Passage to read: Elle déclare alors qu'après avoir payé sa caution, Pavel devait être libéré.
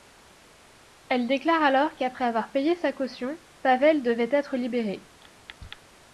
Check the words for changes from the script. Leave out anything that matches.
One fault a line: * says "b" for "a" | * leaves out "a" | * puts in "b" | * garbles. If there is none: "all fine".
all fine